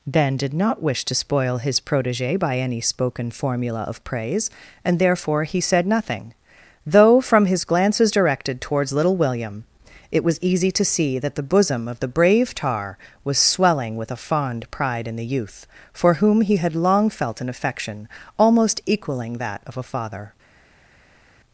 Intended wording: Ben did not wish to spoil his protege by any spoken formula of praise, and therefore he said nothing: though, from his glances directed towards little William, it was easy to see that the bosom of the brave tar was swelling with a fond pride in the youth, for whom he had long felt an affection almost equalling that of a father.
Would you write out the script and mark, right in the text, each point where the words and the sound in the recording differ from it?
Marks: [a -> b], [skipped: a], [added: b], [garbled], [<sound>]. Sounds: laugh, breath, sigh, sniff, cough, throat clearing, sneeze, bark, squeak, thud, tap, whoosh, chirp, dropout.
Ben did not wish to spoil his protege by any spoken formula of praise, and therefore he said nothing: though, from his glances directed towards little William, it was easy to see that the bosom of the brave tar was swelling with a fond pride in the youth, for whom he had long felt an affection almost equalling that of a father.